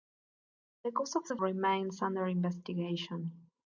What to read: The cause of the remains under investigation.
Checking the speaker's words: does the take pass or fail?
pass